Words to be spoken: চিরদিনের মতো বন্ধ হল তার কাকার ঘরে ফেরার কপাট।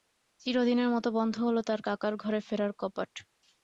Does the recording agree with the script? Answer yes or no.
yes